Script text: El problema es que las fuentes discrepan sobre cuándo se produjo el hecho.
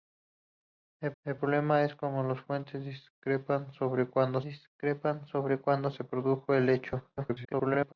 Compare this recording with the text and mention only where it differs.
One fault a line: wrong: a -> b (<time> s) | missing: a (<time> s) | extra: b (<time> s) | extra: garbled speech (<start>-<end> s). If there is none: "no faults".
extra: el (1.2 s)
extra: discrepan sobre cuándo (4.4 s)
extra: garbled speech (7.2-7.9 s)